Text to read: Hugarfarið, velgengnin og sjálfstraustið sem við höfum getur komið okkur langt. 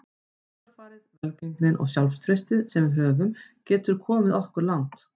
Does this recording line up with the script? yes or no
yes